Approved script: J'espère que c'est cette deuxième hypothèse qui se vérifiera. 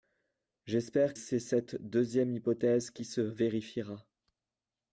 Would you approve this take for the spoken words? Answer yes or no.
no